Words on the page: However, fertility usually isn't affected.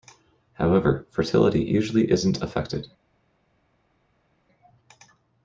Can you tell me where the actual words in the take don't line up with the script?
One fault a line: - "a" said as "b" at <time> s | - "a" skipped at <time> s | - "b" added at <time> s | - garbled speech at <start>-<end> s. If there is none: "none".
none